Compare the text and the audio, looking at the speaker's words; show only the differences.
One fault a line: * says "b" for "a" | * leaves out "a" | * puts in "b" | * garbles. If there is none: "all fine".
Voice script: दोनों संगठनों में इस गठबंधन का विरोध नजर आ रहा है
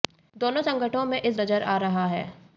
* leaves out "गठबंधन का विरोध"